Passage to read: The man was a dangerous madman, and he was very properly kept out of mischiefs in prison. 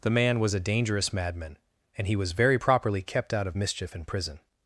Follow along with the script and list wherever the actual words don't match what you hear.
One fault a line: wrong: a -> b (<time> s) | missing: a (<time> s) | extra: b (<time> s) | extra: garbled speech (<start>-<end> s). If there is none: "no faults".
wrong: mischiefs -> mischief (3.5 s)